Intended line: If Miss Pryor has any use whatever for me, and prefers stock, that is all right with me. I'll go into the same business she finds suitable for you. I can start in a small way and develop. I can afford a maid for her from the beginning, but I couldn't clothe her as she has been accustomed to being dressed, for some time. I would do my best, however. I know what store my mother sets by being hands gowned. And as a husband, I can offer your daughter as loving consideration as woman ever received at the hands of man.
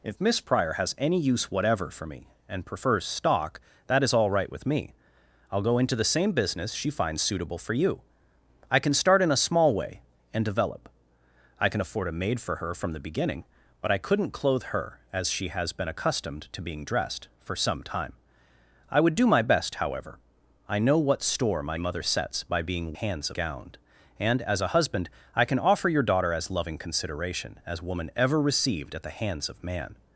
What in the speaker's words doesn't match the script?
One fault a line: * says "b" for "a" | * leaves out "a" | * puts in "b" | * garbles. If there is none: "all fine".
all fine